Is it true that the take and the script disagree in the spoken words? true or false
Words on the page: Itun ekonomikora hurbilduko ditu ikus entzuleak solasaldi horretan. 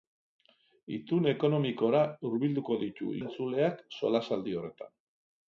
true